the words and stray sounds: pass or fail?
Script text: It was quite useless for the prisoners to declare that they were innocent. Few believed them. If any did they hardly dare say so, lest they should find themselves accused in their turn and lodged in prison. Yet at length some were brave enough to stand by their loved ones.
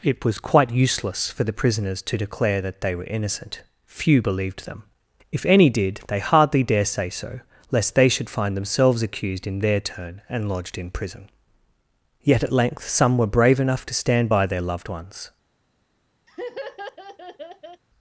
fail